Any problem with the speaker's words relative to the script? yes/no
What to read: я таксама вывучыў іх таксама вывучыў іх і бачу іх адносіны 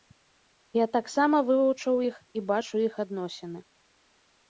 yes